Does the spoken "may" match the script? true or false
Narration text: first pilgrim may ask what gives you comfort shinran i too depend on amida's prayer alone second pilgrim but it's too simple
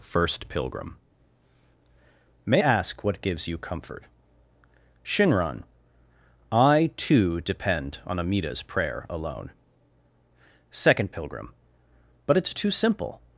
true